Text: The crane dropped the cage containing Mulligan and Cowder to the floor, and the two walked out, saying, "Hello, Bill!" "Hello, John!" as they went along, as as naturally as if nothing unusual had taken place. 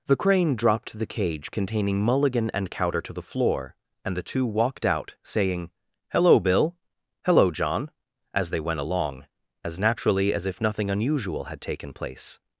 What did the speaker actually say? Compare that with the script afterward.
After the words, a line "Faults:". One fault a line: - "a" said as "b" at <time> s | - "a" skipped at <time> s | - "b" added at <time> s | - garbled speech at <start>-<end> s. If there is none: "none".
The crane dropped the cage containing Mulligan and Cowder to the floor, and the two walked out, saying, "Hello, Bill!" "Hello, John!" as they went along, as naturally as if nothing unusual had taken place.
Faults:
- "as" skipped at 9.8 s